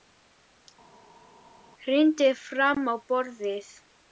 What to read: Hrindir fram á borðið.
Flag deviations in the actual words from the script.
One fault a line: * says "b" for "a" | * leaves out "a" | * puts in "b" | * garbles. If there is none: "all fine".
all fine